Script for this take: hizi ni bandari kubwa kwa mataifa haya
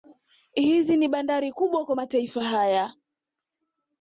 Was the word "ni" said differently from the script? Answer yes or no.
no